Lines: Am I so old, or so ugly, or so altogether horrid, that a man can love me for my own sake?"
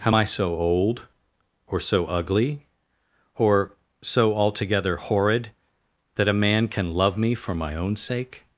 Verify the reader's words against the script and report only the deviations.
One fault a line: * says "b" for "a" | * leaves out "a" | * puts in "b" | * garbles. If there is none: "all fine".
all fine